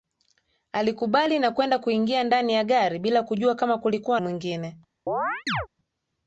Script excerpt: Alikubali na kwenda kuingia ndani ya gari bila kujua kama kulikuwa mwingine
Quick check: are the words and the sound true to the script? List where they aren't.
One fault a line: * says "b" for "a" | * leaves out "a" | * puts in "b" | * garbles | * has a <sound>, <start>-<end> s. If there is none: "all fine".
* has a chirp, 5.1-5.7 s